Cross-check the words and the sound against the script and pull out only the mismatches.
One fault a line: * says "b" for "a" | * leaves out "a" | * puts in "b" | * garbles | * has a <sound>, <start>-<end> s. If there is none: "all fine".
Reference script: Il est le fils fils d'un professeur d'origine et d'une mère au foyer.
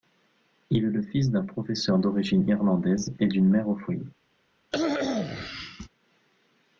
* leaves out "fils"
* puts in "irlandaise"
* has a cough, 4.7-5.9 s